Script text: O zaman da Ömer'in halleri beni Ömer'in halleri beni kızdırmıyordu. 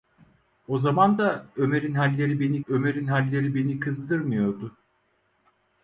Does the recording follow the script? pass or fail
pass